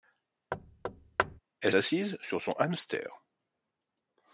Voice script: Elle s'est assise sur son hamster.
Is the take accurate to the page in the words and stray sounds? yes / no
no